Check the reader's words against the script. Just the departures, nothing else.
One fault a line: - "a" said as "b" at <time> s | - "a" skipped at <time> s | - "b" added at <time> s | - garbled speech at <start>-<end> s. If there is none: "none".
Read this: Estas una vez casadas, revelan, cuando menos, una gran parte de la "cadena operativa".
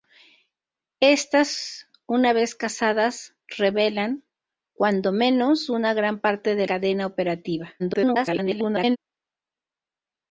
- "la" skipped at 6.7 s
- garbled speech at 7.8-9.0 s